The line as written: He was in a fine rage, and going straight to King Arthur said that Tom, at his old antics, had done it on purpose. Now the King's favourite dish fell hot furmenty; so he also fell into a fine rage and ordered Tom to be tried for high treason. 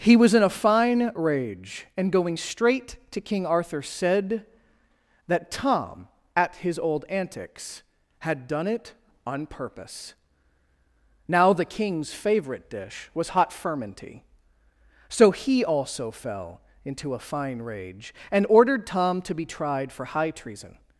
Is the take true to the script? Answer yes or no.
no